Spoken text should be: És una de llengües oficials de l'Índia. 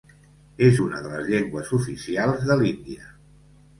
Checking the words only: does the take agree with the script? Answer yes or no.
no